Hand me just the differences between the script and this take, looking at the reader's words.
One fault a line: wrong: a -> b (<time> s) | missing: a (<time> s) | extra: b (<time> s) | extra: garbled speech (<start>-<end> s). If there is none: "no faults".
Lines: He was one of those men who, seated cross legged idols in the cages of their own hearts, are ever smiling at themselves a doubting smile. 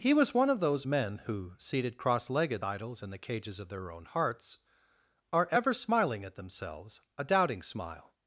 no faults